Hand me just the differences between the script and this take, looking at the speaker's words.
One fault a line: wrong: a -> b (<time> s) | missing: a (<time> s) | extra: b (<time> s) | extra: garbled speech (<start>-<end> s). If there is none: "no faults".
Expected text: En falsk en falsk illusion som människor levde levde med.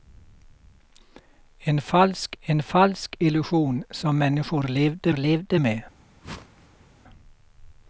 no faults